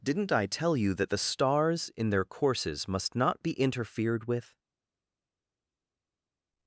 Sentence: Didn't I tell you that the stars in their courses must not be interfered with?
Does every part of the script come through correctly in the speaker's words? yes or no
yes